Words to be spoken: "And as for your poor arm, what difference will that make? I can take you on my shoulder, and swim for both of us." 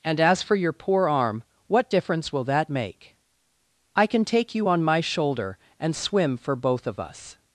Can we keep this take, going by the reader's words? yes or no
yes